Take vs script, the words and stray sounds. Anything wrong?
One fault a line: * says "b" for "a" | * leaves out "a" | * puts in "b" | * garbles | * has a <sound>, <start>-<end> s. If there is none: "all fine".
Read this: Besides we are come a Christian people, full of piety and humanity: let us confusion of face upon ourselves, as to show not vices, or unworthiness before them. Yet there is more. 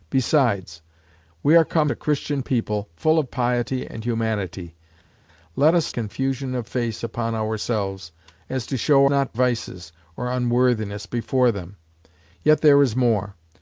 all fine